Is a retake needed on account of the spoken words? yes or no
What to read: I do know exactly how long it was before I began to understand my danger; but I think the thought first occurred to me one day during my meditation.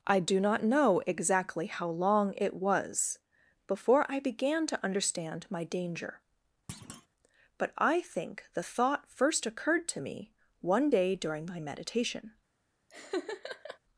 yes